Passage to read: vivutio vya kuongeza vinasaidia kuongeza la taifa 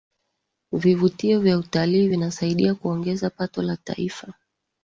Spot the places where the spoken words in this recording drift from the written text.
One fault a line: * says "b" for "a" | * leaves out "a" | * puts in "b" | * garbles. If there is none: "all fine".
* says "utalii" for "kuongeza"
* puts in "pato"